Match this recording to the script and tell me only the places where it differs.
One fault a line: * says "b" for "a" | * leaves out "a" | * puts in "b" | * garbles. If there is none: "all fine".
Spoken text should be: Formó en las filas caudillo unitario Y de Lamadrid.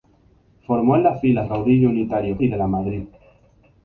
all fine